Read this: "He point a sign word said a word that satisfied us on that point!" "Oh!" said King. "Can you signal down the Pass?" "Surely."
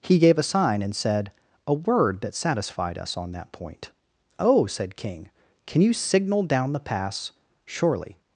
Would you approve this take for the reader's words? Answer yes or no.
no